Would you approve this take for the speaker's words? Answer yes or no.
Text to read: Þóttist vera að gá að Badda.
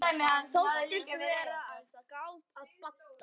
yes